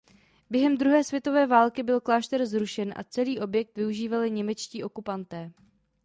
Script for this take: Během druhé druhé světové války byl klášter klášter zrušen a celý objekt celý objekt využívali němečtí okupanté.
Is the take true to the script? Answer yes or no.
no